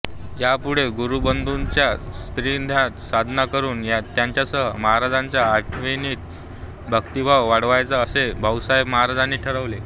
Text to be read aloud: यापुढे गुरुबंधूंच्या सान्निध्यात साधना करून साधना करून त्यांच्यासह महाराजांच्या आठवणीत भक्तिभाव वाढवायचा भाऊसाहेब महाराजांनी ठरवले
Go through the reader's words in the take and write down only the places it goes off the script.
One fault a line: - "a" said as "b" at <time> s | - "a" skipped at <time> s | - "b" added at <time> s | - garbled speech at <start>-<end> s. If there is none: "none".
- "साधना करून" skipped at 3.8 s
- "असे" added at 8.0 s